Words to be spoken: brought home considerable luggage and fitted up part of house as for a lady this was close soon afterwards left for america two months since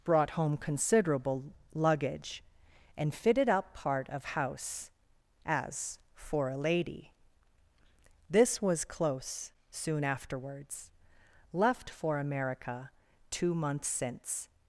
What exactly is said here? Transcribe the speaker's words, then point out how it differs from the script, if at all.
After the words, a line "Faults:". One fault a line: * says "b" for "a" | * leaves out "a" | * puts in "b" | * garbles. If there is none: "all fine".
brought home considerable luggage and fitted up part of house as for a lady this was close soon afterwards left for america two months since
Faults:
all fine